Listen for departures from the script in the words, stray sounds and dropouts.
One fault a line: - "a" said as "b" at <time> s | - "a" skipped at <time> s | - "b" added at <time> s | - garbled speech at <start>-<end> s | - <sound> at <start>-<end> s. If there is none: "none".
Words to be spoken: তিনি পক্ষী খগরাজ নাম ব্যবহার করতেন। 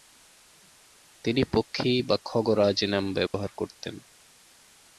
- "বা" added at 2.0 s
- dropout at 3.3-3.3 s